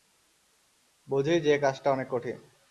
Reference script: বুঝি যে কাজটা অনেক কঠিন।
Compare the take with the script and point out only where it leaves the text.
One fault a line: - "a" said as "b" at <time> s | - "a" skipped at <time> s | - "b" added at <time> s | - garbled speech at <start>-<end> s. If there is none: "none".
none